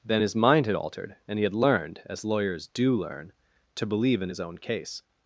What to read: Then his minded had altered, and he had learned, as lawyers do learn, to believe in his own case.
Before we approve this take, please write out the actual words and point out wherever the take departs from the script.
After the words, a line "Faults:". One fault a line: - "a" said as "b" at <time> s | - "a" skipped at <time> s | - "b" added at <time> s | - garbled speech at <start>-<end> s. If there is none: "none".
Then his mind had altered, and he had learned, as lawyers do learn, to believe in his own case.
Faults:
- "minded" said as "mind" at 0.4 s